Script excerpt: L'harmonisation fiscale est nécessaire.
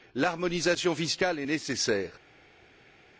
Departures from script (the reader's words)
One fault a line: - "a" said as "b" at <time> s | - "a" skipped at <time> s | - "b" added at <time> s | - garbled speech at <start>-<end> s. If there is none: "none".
none